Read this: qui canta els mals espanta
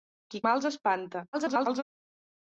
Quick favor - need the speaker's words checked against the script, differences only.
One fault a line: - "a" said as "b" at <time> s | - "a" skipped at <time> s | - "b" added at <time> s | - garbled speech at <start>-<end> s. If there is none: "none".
- "canta els" skipped at 0.4 s
- garbled speech at 1.3-1.8 s